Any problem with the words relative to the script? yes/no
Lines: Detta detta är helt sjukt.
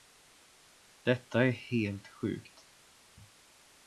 yes